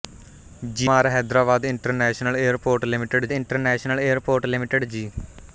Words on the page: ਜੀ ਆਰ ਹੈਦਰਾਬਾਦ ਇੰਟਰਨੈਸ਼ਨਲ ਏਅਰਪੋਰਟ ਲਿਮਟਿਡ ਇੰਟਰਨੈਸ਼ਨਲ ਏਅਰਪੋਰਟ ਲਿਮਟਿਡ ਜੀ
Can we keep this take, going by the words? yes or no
yes